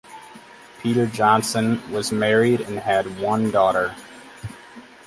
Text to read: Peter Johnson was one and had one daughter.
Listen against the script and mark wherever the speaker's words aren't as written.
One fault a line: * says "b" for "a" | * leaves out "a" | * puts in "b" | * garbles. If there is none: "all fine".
* says "married" for "one"